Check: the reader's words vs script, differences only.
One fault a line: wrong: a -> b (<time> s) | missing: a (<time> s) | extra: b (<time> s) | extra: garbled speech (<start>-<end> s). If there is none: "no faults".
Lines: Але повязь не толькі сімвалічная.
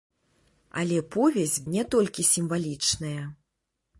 no faults